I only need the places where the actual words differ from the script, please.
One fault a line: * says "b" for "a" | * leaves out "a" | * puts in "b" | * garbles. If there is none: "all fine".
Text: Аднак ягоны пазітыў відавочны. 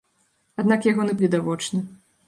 * leaves out "пазітыў"